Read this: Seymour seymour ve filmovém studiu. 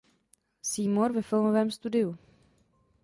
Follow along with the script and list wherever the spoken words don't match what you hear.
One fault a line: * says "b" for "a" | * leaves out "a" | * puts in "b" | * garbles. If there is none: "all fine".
* leaves out "seymour"